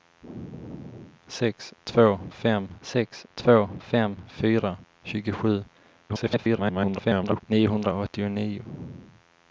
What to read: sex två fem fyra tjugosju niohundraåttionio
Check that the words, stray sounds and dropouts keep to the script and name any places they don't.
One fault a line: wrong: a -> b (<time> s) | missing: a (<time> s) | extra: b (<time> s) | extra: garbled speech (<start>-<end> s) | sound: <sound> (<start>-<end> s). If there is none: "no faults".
extra: sex två fem (2.8 s)
extra: garbled speech (6.1-7.4 s)